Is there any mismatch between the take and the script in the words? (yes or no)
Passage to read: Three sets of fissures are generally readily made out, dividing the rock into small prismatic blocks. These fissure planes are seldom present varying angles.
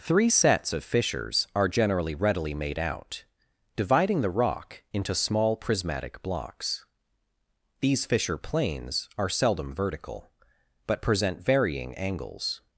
yes